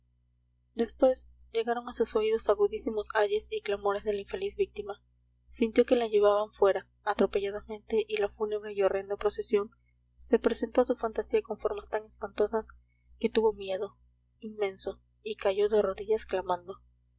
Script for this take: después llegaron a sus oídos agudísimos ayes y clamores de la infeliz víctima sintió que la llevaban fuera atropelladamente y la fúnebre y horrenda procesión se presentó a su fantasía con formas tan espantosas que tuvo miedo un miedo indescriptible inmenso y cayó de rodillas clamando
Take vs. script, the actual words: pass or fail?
fail